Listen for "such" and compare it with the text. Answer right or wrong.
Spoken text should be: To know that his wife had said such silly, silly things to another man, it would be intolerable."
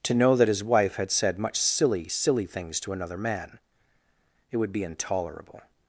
wrong